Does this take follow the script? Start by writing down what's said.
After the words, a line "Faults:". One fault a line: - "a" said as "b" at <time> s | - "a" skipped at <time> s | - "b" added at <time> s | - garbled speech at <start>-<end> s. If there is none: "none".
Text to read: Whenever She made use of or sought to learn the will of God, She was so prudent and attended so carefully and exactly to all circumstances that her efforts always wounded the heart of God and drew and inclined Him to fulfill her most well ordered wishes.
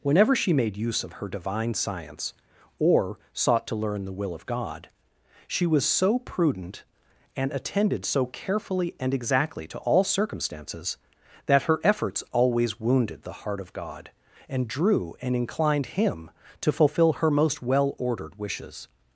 Whenever She made use of her divine science or sought to learn the will of God, She was so prudent and attended so carefully and exactly to all circumstances that her efforts always wounded the heart of God and drew and inclined Him to fulfill her most well ordered wishes.
Faults:
- "her divine science" added at 1.1 s